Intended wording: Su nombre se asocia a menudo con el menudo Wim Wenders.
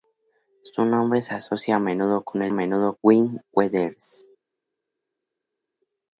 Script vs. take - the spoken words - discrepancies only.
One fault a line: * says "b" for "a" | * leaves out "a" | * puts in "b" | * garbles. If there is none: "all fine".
all fine